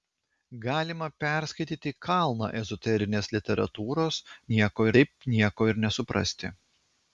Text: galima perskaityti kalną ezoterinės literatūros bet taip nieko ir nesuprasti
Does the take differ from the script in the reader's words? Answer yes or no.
yes